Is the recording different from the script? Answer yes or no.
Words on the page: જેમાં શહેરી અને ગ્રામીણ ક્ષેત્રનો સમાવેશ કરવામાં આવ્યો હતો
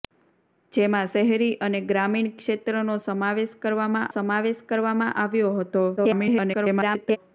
yes